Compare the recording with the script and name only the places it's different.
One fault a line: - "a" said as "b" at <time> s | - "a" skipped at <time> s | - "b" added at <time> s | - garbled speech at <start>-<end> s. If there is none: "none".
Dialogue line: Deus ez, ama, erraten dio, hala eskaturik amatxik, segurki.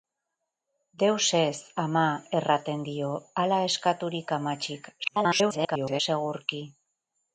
- garbled speech at 5.0-6.0 s